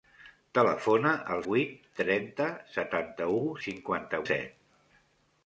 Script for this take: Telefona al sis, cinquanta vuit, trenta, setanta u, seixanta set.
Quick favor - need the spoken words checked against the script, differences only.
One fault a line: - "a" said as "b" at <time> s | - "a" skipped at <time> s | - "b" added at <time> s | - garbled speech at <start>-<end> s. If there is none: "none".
- "sis cinquanta" skipped at 1.4 s
- "seixanta" said as "cinquanta" at 3.6 s